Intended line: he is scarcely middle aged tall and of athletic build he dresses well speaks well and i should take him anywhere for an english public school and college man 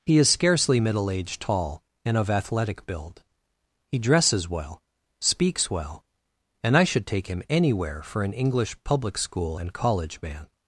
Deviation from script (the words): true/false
false